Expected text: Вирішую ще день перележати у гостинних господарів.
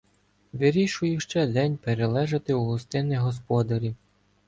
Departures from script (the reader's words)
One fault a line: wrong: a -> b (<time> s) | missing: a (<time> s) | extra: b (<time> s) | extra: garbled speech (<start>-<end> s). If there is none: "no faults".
no faults